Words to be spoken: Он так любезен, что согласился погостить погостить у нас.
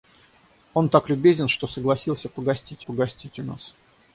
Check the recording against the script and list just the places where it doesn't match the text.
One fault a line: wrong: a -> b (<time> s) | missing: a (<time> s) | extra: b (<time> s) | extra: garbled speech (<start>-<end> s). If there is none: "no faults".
no faults